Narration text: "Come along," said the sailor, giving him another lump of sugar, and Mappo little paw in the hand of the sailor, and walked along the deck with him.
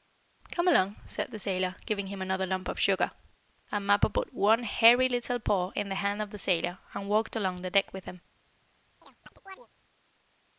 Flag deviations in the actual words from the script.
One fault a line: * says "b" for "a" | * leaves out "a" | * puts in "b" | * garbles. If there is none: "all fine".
* puts in "put one hairy"